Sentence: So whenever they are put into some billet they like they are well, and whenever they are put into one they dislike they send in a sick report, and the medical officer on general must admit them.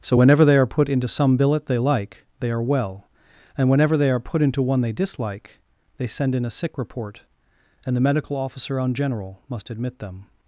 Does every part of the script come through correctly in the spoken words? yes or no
yes